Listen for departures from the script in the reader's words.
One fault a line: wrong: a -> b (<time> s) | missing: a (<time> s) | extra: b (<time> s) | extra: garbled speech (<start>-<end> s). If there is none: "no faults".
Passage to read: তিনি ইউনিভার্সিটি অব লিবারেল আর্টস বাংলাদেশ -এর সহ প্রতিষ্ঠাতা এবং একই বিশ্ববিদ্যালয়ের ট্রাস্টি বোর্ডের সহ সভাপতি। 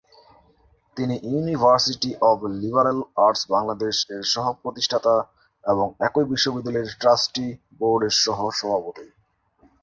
no faults